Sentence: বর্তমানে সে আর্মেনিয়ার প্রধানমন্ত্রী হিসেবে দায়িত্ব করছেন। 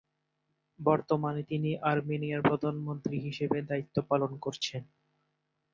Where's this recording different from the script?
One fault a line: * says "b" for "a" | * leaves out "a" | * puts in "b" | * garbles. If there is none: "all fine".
* says "তিনি" for "সে"
* puts in "পালন"